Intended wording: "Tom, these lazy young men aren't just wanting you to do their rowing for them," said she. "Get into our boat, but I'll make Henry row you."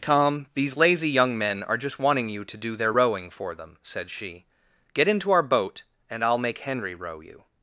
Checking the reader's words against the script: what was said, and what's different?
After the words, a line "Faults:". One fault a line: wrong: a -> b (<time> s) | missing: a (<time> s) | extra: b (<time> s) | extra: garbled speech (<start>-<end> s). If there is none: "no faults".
"Tom, these lazy young men are just wanting you to do their rowing for them," said she. "Get into our boat, and I'll make Henry row you."
Faults:
wrong: aren't -> are (1.6 s)
wrong: but -> and (6.1 s)